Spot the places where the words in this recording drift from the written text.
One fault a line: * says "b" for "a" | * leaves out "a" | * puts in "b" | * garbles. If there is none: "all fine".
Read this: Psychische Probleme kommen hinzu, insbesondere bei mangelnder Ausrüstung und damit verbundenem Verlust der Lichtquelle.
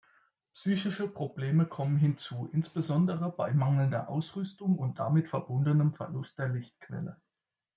all fine